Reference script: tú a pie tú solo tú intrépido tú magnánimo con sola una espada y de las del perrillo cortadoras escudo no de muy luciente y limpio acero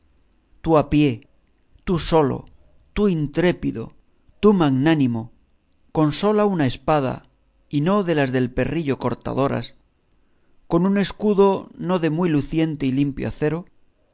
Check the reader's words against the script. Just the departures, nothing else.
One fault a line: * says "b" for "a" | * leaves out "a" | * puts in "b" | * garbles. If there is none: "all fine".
* puts in "no"
* puts in "con un"